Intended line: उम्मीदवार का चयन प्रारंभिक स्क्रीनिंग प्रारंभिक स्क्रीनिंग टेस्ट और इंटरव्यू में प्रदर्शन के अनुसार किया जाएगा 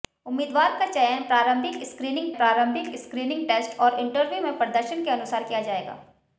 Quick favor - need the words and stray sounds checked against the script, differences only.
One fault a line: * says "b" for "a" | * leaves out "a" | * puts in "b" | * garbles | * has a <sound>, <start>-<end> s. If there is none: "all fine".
all fine